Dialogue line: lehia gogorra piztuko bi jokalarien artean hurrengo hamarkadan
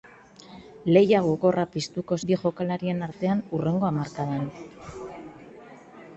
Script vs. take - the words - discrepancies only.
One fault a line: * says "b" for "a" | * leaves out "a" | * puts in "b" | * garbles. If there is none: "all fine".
all fine